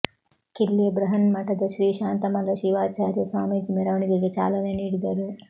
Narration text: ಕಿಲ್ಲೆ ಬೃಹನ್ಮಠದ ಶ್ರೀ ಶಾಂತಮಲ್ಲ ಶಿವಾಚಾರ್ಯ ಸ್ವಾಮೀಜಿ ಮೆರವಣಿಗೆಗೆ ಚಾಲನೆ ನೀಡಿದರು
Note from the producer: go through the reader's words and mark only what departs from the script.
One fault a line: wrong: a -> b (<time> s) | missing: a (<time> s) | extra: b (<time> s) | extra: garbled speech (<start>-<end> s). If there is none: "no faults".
no faults